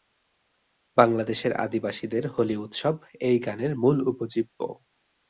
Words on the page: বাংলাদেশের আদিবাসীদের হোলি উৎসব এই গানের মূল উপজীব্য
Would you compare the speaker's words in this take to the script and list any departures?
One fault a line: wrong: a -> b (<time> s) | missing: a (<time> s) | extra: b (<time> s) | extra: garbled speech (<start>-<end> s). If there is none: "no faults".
no faults